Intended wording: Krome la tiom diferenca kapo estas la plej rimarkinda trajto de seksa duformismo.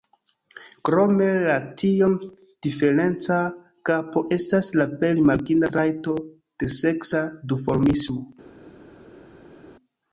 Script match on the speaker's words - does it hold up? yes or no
yes